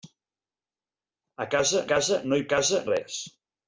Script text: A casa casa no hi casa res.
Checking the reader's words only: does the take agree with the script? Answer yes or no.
yes